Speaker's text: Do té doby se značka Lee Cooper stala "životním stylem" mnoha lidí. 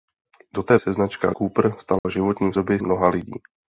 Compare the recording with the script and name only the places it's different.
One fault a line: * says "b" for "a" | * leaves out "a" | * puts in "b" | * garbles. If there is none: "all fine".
* leaves out "doby"
* leaves out "Lee"
* says "doby" for "stylem"